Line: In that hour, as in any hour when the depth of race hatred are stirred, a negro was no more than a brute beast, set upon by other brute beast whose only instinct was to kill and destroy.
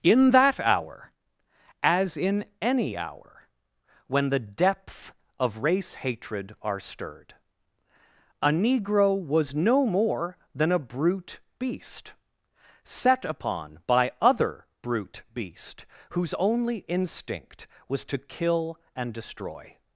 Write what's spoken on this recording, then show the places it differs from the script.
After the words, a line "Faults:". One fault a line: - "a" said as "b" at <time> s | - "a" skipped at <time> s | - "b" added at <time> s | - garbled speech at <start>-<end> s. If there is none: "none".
In that hour, as in any hour when the depth of race hatred are stirred, a negro was no more than a brute beast, set upon by other brute beast whose only instinct was to kill and destroy.
Faults:
none